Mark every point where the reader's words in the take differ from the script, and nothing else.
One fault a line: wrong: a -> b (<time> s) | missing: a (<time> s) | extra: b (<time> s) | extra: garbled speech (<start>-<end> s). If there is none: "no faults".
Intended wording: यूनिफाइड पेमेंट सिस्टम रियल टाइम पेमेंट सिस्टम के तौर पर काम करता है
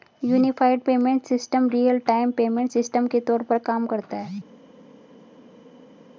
no faults